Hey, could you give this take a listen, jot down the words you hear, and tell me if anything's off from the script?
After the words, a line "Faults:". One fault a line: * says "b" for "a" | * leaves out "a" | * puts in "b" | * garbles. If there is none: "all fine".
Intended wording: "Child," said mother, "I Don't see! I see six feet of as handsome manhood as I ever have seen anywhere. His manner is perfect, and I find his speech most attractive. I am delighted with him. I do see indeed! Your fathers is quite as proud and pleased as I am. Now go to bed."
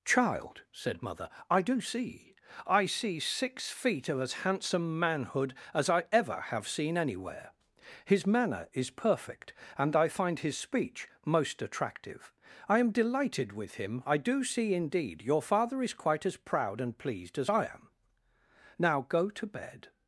"Child," said mother, "I DO see! I see six feet of as handsome manhood as I ever have seen anywhere. His manner is perfect, and I find his speech most attractive. I am delighted with him. I do see indeed! Your father is quite as proud and pleased as I am. Now go to bed."
Faults:
* says "DO" for "Don't"
* says "father" for "fathers"